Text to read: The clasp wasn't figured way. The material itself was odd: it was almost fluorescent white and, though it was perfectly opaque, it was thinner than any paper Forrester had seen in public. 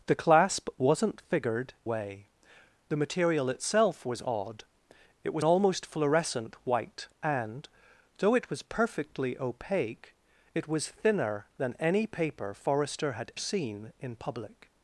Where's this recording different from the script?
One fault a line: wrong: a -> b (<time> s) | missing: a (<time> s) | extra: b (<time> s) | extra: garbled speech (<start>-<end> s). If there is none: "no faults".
no faults